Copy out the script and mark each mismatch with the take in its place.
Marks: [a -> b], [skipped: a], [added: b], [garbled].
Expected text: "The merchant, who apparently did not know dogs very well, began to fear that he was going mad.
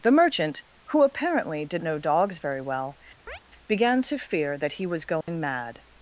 "The merchant, who apparently did [skipped: not] know dogs very well, began to fear that he was going mad.